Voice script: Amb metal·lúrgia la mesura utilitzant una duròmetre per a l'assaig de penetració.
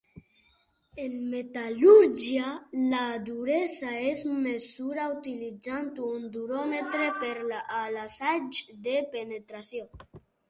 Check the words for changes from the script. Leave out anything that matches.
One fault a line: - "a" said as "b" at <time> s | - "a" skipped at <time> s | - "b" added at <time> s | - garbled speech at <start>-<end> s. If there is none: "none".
- "Amb" said as "En" at 1.0 s
- "duresa es" added at 3.3 s
- "una" said as "un" at 6.1 s